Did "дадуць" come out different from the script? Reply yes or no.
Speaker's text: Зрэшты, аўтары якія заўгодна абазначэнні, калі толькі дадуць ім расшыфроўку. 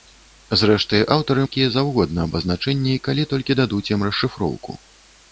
no